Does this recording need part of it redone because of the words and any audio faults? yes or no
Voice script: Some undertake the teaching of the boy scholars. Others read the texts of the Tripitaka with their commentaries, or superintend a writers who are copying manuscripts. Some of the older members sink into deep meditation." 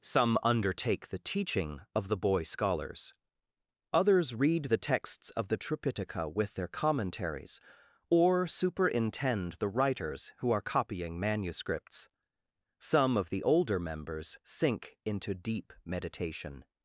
yes